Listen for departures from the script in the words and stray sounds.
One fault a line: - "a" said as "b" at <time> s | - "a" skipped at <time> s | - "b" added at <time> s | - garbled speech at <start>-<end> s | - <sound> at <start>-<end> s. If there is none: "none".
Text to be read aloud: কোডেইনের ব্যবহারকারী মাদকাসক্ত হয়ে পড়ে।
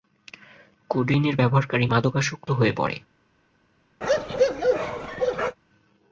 - bark at 4.0-5.6 s